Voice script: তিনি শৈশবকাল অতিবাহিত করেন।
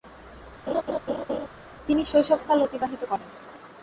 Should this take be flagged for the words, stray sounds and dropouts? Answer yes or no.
yes